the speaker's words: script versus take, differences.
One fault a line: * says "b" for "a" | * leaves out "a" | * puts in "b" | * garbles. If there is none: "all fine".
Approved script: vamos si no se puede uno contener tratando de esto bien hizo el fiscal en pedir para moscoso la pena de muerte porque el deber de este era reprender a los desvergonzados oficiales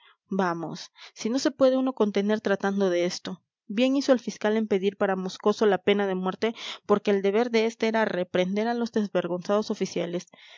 all fine